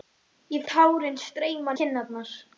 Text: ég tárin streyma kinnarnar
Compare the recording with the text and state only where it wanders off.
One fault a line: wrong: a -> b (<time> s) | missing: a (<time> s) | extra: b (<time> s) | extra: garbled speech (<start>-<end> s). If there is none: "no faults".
no faults